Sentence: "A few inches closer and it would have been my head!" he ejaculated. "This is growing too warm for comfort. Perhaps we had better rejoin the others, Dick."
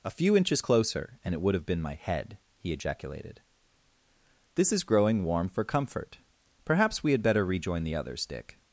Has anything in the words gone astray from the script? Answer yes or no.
yes